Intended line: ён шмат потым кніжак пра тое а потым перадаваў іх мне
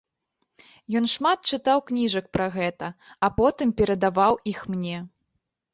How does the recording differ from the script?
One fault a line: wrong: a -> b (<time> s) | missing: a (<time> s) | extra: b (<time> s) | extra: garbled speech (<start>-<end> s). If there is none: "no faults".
wrong: потым -> чытаў (1.5 s)
wrong: тое -> гэта (2.6 s)